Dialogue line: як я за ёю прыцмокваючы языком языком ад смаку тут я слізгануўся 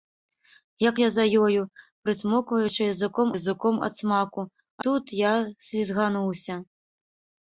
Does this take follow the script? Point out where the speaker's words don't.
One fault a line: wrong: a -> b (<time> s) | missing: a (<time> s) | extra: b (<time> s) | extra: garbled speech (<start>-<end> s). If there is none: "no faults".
no faults